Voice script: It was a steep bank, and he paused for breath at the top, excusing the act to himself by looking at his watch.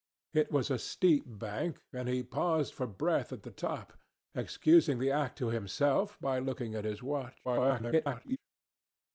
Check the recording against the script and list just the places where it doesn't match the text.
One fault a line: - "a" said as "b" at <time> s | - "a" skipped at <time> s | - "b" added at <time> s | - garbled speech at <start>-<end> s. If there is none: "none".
- garbled speech at 7.4-8.4 s